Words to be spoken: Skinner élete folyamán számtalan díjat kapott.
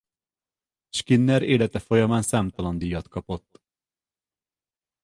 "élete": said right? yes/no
yes